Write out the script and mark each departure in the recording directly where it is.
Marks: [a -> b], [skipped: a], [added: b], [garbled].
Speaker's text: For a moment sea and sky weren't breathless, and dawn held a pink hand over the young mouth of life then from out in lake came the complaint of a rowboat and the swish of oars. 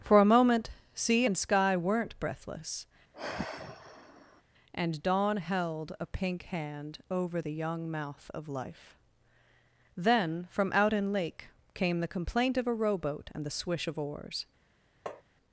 For a moment sea and sky weren't breathless, and dawn held a pink hand over the young mouth of life then from out in lake came the complaint of a rowboat and the swish of oars.